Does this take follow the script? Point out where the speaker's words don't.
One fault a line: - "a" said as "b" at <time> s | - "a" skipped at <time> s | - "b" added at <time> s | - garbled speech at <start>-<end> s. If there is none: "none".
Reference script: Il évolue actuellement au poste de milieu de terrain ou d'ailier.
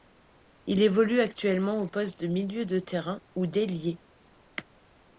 none